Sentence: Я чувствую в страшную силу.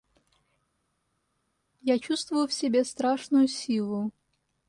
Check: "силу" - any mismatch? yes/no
no